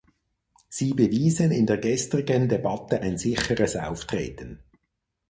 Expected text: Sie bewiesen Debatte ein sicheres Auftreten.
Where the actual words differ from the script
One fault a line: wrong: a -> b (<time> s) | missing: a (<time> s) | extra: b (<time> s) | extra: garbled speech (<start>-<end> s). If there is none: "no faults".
extra: in der gestrigen (1.5 s)